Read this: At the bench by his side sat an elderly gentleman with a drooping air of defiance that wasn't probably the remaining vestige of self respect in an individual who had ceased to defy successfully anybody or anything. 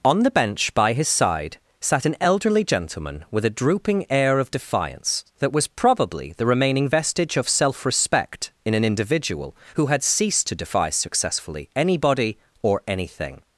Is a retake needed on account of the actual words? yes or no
yes